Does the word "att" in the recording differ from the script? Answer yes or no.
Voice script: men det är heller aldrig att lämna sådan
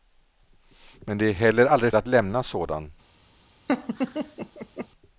no